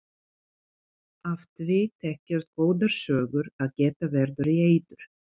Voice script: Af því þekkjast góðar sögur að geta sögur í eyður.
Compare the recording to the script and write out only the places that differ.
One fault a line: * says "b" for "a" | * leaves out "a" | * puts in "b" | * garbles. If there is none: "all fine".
* says "verður" for "sögur"